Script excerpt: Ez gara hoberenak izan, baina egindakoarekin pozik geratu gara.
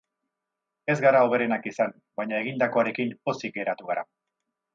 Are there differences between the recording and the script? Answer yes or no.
no